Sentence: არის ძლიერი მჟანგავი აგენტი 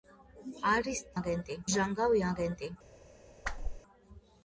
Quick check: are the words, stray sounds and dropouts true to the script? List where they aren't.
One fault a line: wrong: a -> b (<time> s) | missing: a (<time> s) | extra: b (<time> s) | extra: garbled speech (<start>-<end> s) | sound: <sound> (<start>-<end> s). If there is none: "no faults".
wrong: ძლიერი -> აგენტი (1.2 s)
sound: whoosh (3.4-3.8 s)